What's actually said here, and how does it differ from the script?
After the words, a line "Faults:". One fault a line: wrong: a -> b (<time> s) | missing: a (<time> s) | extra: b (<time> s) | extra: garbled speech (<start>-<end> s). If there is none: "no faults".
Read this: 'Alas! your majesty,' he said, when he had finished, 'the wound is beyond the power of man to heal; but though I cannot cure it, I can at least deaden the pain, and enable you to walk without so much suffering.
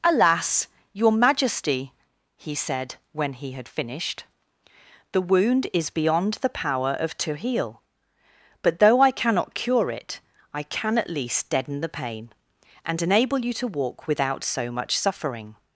'Alas! your majesty,' he said, when he had finished, 'the wound is beyond the power of to heal; but though I cannot cure it, I can at least deaden the pain, and enable you to walk without so much suffering.
Faults:
missing: man (7.2 s)